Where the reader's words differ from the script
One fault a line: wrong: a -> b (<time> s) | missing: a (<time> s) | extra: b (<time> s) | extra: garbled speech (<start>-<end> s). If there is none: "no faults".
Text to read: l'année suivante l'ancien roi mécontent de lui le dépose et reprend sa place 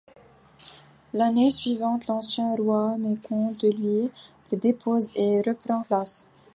missing: sa (5.8 s)